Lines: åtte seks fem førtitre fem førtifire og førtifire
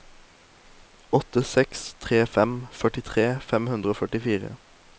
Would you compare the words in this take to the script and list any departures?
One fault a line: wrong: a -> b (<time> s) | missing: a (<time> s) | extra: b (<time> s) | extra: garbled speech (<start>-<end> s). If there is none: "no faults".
extra: tre (2.0 s)
wrong: førtifire -> hundre (3.8 s)